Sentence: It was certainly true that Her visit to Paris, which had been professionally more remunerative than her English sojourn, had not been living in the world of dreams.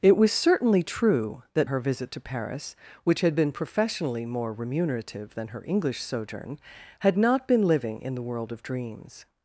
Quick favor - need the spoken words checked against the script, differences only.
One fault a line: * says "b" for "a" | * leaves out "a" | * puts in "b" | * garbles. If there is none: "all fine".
all fine